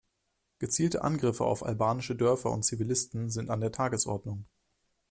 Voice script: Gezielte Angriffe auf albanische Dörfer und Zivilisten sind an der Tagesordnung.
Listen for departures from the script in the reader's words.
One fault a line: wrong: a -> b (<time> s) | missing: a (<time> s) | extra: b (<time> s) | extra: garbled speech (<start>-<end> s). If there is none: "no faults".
no faults